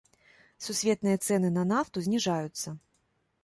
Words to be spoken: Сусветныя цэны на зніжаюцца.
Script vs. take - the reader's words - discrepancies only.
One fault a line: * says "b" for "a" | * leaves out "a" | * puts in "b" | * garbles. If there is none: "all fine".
* puts in "нафту"